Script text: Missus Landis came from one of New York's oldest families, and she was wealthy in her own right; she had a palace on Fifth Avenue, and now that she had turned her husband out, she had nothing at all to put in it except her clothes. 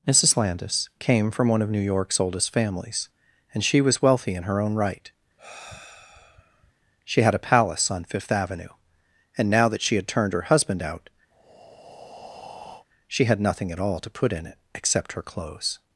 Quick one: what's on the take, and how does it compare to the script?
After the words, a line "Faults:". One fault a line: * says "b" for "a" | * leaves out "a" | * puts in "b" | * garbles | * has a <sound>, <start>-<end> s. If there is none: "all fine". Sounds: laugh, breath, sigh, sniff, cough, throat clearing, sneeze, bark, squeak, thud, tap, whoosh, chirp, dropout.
Missus Landis came from one of New York's oldest families, and she was wealthy in her own right; she had a palace on Fifth Avenue, and now that she had turned her husband out, she had nothing at all to put in it except her clothes.
Faults:
* has a sigh, 5.4-6.7 s
* has a breath, 11.3-12.9 s